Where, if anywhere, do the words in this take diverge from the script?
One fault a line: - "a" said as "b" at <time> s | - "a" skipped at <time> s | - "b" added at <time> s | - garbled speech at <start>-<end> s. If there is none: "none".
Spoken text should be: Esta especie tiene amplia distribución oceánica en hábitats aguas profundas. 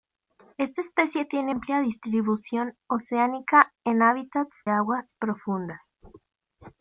none